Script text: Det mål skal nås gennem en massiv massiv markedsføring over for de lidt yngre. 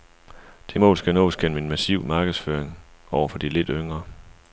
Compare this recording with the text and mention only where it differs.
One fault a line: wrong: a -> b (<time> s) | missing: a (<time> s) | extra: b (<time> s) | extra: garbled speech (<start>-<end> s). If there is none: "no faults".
missing: massiv (2.0 s)